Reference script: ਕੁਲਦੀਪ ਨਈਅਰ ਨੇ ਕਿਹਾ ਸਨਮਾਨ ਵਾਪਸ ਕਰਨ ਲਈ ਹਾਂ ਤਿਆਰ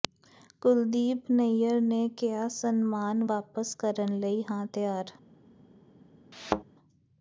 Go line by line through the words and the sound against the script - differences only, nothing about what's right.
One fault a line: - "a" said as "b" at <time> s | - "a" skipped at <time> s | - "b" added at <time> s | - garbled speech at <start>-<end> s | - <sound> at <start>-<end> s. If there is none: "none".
- thud at 6.3-6.6 s